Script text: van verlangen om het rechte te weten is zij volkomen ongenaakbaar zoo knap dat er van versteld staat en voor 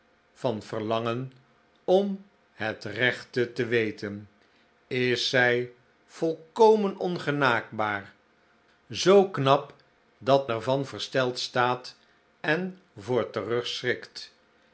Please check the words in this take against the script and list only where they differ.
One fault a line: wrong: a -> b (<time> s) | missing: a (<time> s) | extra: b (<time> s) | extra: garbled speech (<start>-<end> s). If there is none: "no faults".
no faults